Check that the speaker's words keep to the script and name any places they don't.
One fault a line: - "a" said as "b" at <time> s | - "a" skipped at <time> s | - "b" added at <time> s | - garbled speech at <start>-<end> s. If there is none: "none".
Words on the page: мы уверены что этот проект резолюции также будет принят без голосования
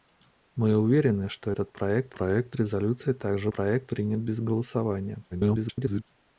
- "проект" added at 2.1 s
- "будет" said as "проект" at 3.5 s
- garbled speech at 5.3-6.0 s